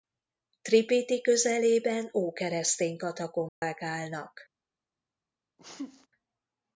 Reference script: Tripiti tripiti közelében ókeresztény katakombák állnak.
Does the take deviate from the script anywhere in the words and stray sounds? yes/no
yes